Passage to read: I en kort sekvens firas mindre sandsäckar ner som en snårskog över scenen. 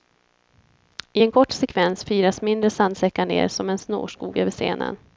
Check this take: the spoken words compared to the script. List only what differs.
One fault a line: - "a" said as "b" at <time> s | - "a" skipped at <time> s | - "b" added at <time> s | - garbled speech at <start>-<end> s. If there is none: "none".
none